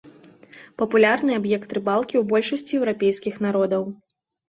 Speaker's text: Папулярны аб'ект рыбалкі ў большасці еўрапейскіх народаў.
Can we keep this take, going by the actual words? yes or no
yes